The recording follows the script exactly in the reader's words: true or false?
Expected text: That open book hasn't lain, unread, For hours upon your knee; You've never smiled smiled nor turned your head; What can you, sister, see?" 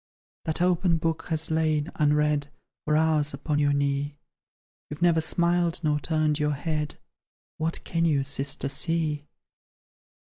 false